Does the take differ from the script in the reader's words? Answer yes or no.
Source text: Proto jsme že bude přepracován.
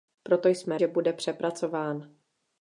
no